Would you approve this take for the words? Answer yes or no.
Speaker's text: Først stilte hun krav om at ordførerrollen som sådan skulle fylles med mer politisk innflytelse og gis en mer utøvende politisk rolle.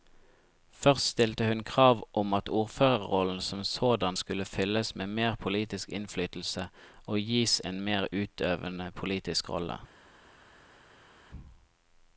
yes